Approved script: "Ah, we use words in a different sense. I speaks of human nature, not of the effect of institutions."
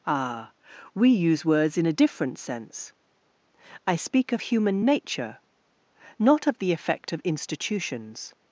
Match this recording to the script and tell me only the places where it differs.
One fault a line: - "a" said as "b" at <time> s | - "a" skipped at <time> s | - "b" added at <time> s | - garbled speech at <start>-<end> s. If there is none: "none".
- "speaks" said as "speak" at 4.0 s